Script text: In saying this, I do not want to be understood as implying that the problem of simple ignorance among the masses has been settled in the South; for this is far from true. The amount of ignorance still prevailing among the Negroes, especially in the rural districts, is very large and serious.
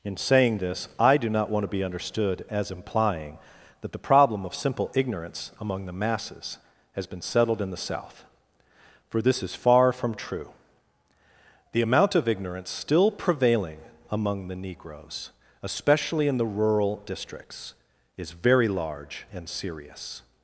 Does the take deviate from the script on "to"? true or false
false